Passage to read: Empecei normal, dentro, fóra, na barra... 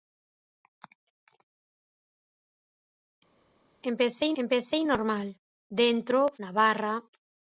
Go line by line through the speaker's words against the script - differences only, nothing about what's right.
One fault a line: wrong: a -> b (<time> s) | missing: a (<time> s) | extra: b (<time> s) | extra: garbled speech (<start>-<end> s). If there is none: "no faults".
extra: empecei (4.4 s)
missing: fóra (6.2 s)